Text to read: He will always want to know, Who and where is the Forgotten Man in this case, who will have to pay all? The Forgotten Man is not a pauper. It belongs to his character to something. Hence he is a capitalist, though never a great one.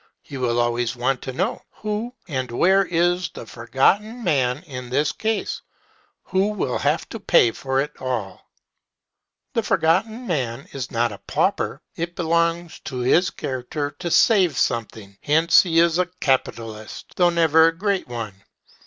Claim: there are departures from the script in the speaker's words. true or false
true